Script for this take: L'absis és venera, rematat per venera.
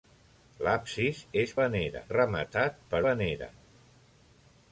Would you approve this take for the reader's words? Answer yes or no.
yes